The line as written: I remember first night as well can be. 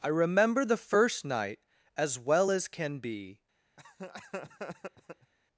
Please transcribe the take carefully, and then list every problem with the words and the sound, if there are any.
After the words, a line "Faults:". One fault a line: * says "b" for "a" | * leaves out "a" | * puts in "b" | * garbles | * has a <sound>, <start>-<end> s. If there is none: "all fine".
I remember the first night as well as can be.
Faults:
* puts in "the"
* puts in "as"
* has a laugh, 3.8-5.3 s